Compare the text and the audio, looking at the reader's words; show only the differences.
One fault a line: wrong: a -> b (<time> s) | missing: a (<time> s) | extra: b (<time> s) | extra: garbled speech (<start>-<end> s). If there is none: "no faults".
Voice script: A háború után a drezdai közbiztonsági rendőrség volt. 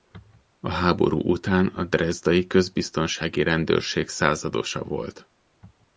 extra: századosa (4.1 s)